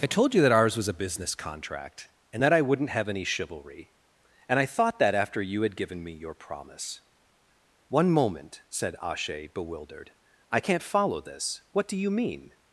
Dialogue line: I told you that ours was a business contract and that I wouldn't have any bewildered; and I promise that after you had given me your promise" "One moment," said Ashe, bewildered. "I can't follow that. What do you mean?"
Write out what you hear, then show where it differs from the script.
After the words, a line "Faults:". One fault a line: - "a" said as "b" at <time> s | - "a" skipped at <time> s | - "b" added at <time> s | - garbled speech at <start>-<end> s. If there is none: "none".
I told you that ours was a business contract and that I wouldn't have any chivalry; and I thought that after you had given me your promise" "One moment," said Ashe, bewildered. "I can't follow this. What do you mean?"
Faults:
- "bewildered" said as "chivalry" at 3.2 s
- "promise" said as "thought" at 4.6 s
- "that" said as "this" at 11.2 s